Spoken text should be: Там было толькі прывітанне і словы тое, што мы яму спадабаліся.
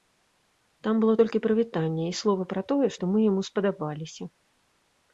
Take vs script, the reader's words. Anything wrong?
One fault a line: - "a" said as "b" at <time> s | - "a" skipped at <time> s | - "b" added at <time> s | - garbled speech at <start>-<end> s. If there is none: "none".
- "пра" added at 2.5 s